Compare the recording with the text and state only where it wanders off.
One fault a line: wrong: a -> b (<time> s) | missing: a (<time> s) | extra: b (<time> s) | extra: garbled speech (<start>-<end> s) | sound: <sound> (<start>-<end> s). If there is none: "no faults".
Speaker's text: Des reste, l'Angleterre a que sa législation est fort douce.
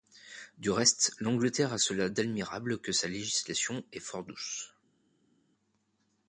wrong: Des -> Du (0.6 s)
extra: cela d'admirable (1.8 s)